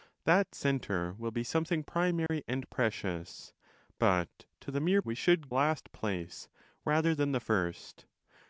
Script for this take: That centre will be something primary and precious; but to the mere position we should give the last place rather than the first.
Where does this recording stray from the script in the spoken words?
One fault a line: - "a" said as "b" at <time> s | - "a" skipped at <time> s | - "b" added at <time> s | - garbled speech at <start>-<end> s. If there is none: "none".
- "position" skipped at 5.0 s
- "give the" skipped at 5.5 s